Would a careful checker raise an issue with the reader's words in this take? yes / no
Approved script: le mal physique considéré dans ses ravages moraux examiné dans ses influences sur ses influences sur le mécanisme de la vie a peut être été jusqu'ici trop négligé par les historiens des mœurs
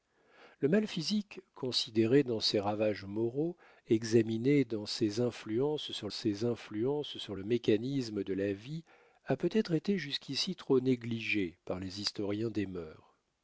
no